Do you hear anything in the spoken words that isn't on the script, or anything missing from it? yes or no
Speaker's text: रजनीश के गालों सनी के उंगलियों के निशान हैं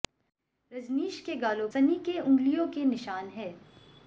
no